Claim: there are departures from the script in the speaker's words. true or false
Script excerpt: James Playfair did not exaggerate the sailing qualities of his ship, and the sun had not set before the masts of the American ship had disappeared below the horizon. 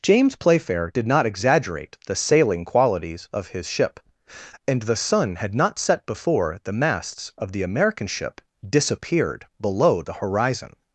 true